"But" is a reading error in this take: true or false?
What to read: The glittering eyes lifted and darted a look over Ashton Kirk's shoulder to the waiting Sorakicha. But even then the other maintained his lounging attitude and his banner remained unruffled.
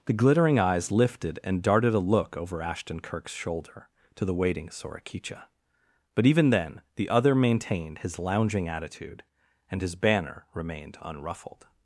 false